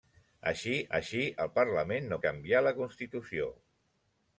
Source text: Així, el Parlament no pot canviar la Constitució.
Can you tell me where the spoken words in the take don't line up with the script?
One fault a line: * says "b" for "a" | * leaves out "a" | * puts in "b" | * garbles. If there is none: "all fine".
* puts in "així"
* leaves out "pot"